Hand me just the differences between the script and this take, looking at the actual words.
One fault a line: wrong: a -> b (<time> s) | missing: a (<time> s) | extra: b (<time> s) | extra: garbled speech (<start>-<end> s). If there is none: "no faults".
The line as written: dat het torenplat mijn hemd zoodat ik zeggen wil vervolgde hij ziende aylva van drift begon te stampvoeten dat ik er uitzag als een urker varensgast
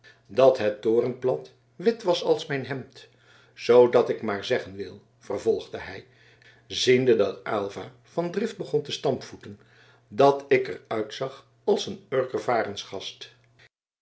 extra: wit was als (1.8 s)
extra: maar (4.2 s)
extra: dat (7.2 s)